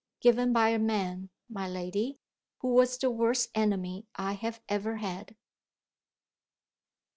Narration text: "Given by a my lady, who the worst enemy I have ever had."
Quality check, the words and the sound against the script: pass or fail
fail